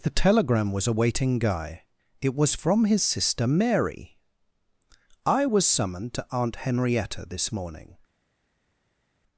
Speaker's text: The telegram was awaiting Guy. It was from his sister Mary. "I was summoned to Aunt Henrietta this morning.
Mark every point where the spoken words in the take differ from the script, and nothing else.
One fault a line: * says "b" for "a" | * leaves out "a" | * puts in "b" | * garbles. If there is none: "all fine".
all fine